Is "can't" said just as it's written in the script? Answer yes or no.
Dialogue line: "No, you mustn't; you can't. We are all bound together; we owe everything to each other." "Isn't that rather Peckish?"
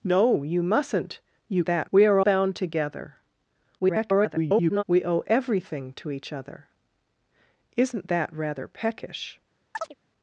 no